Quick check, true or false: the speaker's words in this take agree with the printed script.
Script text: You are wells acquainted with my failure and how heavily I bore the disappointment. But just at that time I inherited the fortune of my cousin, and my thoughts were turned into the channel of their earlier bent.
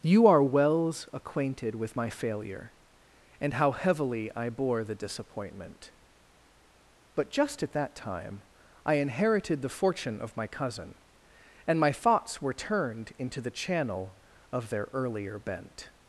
true